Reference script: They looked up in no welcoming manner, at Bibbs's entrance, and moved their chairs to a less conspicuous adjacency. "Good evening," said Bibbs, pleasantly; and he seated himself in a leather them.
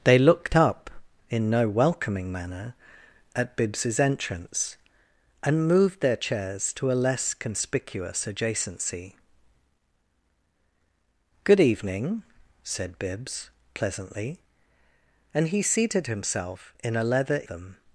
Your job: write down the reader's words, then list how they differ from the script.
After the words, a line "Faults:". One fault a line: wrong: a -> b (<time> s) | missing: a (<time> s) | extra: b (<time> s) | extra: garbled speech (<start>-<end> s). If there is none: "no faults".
They looked up in no welcoming manner, at Bibbs's entrance, and moved their chairs to a less conspicuous adjacency. "Good evening," said Bibbs, pleasantly; and he seated himself in a leather them.
Faults:
no faults